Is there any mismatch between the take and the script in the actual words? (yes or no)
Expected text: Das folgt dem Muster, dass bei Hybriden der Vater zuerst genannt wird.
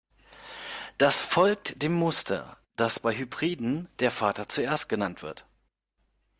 no